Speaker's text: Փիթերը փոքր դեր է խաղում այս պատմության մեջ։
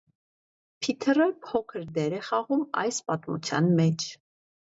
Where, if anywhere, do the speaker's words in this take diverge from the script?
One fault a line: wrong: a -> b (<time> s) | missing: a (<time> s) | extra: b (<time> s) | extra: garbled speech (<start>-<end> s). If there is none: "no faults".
no faults